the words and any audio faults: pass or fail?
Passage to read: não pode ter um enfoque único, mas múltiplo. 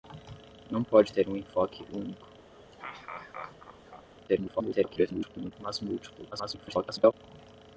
fail